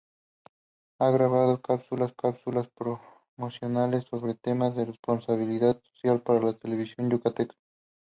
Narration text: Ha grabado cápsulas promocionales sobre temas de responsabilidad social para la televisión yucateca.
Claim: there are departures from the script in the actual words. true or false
true